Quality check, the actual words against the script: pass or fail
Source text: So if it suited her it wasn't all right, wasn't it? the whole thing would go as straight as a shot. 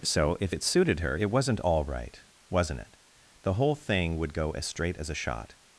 pass